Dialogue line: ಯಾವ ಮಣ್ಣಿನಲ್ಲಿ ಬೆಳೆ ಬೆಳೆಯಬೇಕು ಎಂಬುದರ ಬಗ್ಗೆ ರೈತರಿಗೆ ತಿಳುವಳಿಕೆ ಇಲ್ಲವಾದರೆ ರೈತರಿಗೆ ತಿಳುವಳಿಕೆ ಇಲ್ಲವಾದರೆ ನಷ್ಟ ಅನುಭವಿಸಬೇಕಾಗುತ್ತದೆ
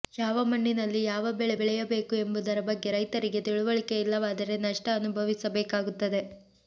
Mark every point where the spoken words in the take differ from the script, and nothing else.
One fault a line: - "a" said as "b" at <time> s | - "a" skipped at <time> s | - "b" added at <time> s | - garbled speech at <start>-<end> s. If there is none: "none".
- "ಯಾವ" added at 1.0 s
- "ರೈತರಿಗೆ ತಿಳುವಳಿಕೆ ಇಲ್ಲವಾದರೆ" skipped at 4.6 s